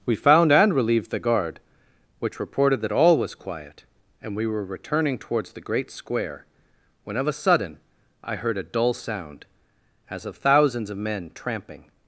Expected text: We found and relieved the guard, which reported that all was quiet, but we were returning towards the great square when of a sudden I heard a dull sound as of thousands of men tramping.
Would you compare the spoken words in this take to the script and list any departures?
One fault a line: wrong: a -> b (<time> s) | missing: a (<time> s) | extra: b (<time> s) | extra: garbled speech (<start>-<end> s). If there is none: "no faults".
wrong: but -> and (4.2 s)